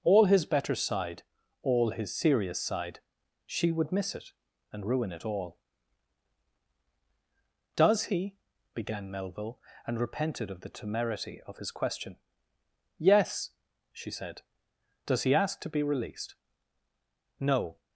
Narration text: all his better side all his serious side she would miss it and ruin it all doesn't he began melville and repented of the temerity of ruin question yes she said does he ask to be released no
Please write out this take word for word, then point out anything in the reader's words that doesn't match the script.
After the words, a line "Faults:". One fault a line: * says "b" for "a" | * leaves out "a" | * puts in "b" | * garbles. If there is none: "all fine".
all his better side all his serious side she would miss it and ruin it all does he began melville and repented of the temerity of his question yes she said does he ask to be released no
Faults:
* says "does" for "doesn't"
* says "his" for "ruin"